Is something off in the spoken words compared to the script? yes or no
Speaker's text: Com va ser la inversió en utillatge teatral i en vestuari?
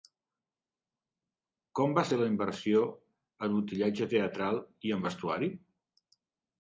no